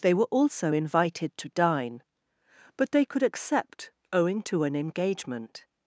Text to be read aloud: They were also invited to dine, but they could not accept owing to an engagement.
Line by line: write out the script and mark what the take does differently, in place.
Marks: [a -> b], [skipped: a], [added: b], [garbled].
They were also invited to dine, but they could [skipped: not] accept owing to an engagement.